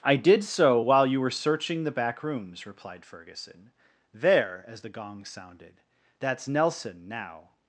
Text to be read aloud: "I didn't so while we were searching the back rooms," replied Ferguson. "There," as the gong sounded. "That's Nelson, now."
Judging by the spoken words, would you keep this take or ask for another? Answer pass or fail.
fail